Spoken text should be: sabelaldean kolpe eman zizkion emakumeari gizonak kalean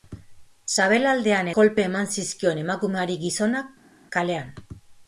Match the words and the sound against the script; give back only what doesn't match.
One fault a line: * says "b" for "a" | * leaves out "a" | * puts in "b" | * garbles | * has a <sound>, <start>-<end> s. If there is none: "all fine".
all fine